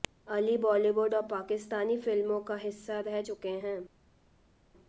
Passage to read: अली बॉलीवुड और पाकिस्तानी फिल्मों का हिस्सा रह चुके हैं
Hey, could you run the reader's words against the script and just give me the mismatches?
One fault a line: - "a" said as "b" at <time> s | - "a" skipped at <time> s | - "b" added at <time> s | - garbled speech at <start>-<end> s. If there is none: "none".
none